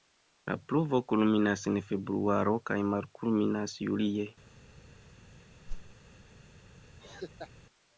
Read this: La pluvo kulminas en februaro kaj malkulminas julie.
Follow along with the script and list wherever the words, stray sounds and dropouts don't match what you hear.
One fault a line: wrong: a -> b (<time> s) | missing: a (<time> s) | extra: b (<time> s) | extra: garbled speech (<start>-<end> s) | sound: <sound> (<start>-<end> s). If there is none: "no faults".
sound: whoosh (5.7-5.9 s)
sound: laugh (7.0-7.5 s)